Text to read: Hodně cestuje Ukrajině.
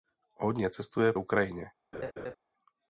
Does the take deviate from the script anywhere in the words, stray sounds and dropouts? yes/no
yes